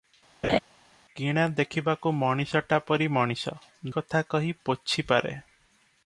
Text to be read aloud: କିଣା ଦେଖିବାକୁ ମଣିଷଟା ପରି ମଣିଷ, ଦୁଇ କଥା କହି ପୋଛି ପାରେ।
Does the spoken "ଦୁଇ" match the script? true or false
false